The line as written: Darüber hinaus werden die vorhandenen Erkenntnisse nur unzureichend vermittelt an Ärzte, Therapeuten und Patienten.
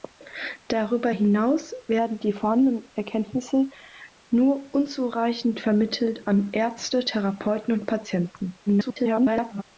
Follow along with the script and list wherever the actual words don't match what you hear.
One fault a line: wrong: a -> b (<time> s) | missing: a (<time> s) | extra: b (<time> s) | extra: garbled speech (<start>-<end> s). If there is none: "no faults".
extra: garbled speech (8.7-9.6 s)